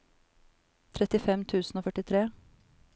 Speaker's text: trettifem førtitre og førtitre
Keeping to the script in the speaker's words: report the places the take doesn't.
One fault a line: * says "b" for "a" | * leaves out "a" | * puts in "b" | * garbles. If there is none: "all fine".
* says "tusen" for "førtitre"